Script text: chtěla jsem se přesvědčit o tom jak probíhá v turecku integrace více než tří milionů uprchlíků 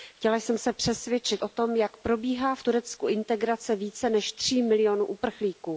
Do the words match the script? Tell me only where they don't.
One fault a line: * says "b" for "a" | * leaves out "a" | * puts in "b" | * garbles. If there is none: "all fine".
all fine